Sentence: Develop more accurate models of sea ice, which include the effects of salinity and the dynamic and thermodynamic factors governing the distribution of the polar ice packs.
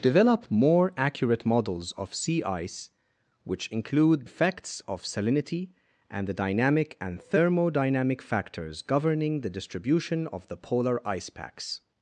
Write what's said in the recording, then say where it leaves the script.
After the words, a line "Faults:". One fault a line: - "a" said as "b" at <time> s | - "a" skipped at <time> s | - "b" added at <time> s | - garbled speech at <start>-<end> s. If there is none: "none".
Develop more accurate models of sea ice, which include effects of salinity and the dynamic and thermodynamic factors governing the distribution of the polar ice packs.
Faults:
- "the" skipped at 4.3 s